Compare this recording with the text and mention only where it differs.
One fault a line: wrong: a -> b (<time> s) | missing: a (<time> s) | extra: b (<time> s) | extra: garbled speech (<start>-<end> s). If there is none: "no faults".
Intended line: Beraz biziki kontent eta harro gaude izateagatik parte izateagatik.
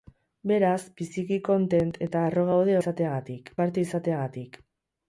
no faults